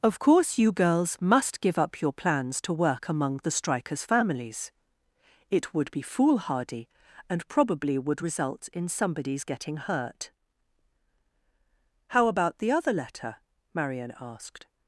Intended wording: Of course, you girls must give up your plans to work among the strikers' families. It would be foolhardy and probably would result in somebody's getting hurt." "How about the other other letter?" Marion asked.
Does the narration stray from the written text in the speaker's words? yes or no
yes